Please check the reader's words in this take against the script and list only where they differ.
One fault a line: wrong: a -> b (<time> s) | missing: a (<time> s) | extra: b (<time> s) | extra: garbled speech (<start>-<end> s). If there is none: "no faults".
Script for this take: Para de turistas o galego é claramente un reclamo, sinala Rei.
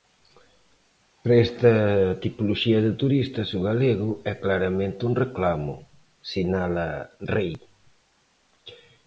extra: esta tipoloxía (1.5 s)